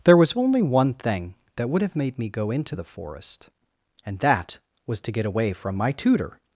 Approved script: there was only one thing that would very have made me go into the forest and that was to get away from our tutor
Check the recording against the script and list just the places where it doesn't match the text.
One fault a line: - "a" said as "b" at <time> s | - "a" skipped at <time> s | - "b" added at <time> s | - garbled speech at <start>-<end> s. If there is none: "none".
- "very" skipped at 1.8 s
- "our" said as "my" at 5.8 s